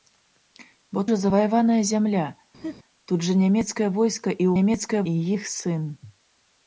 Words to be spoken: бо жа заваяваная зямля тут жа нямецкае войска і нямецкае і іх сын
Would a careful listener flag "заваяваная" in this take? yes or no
no